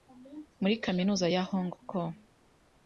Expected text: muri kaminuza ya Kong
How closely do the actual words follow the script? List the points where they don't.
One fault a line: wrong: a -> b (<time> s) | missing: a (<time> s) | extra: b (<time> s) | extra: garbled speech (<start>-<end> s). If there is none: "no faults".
extra: Hong (1.5 s)